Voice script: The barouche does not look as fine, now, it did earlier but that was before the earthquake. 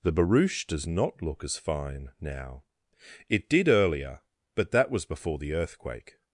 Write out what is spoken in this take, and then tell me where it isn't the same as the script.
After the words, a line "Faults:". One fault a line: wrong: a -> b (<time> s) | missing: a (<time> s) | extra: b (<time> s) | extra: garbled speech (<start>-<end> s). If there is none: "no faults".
The barouche does not look as fine, now, it did earlier but that was before the earthquake.
Faults:
no faults